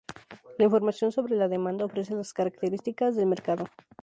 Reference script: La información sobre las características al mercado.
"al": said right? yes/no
no